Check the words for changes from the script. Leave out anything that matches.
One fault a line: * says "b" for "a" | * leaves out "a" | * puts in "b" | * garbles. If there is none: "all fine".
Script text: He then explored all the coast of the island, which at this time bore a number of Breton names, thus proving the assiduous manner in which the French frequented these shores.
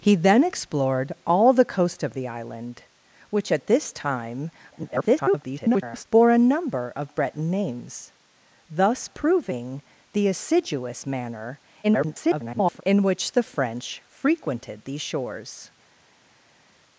* garbles
* garbles